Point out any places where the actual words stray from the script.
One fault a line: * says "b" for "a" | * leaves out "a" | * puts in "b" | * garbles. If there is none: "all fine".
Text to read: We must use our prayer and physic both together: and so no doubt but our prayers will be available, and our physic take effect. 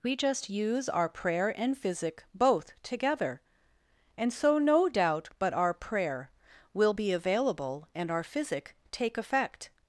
* says "just" for "must"
* says "prayer" for "prayers"